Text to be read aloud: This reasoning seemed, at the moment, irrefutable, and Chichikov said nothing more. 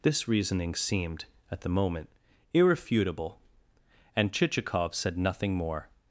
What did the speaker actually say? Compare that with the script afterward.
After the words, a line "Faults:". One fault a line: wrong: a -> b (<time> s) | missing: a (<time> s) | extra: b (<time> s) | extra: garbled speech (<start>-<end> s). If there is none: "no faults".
This reasoning seemed, at the moment, irrefutable, and Chichikov said nothing more.
Faults:
no faults